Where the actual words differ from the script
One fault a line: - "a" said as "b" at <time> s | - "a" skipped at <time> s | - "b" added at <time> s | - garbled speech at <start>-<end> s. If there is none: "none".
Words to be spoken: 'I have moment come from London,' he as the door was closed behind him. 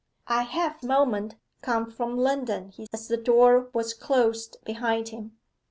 none